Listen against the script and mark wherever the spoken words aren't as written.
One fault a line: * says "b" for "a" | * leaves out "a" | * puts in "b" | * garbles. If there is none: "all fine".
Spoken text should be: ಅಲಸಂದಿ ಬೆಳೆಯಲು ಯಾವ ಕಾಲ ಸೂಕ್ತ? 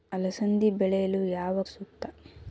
* leaves out "ಕಾಲ"